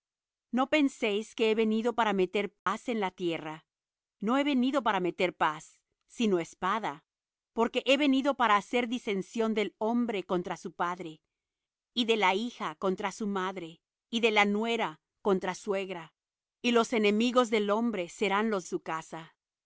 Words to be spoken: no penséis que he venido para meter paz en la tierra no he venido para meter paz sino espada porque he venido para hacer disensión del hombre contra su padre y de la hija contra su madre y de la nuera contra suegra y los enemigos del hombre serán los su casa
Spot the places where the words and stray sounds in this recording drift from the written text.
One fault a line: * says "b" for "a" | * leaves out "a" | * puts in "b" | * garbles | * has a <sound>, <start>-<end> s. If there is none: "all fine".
* has a dropout, 2.6-2.7 s